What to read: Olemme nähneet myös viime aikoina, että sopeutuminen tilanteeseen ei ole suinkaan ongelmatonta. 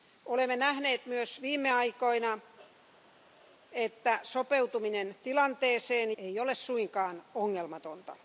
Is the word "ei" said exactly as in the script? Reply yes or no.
yes